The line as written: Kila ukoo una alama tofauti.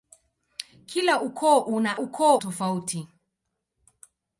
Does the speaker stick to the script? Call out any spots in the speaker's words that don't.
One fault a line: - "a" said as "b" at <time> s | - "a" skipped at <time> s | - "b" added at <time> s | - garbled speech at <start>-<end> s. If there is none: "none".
- "alama" said as "ukoo" at 2.0 s